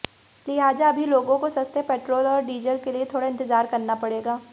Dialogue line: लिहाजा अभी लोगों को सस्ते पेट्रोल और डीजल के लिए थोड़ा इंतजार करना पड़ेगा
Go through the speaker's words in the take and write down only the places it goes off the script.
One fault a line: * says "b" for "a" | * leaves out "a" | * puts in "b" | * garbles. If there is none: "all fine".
all fine